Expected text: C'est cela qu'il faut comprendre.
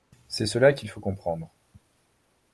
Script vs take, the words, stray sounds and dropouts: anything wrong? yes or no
no